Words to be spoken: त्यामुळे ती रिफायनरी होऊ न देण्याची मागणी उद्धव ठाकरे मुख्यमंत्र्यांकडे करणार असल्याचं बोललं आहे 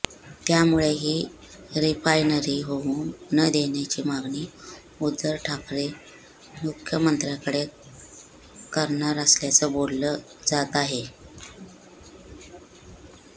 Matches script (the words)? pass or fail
fail